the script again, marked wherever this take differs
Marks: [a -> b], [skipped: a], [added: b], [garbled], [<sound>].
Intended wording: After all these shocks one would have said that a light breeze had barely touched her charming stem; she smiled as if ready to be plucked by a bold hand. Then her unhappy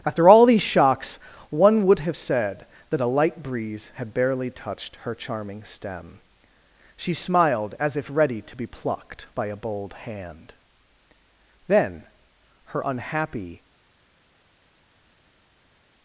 After all these shocks one would have said that a light breeze had barely touched her charming stem; she smiled as if ready to be plucked by a bold hand. Then her unhappy